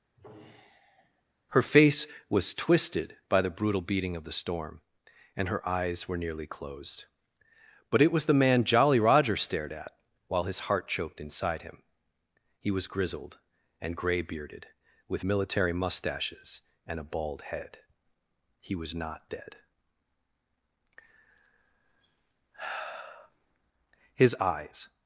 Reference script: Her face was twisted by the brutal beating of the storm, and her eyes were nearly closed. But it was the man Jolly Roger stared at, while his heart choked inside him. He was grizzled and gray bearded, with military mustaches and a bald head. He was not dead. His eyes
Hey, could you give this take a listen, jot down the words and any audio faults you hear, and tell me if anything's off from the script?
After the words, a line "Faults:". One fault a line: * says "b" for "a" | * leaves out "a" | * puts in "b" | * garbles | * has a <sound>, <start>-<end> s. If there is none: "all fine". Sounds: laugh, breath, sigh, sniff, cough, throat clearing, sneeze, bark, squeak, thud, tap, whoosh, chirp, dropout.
Her face was twisted by the brutal beating of the storm, and her eyes were nearly closed. But it was the man Jolly Roger stared at, while his heart choked inside him. He was grizzled and gray bearded, with military mustaches and a bald head. He was not dead. His eyes
Faults:
* has a sigh, 0.1-1.2 s